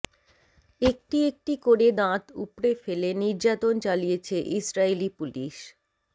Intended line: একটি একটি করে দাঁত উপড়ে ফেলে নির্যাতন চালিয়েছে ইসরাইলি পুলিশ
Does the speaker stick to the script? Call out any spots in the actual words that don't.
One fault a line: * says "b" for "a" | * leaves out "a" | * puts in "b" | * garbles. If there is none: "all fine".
all fine